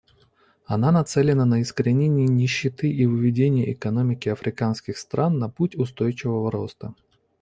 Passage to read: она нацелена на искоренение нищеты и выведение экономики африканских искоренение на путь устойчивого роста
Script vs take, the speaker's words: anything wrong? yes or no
yes